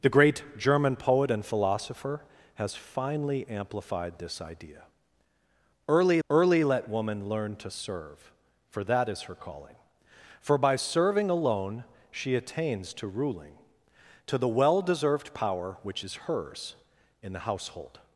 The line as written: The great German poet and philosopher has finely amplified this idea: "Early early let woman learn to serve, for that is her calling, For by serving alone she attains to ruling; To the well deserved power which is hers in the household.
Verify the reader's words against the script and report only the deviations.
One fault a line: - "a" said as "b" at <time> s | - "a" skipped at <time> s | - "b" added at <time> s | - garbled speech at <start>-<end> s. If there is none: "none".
none